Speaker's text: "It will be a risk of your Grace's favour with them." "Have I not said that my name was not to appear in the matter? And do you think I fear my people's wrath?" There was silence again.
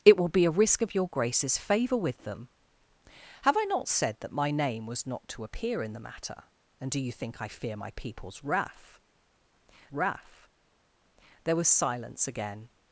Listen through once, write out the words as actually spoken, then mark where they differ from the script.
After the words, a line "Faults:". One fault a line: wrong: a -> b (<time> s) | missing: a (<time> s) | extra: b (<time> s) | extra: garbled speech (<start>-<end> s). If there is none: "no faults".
"It will be a risk of your Grace's favour with them." "Have I not said that my name was not to appear in the matter? And do you think I fear my people's wrath wrath?" There was silence again.
Faults:
extra: wrath (9.9 s)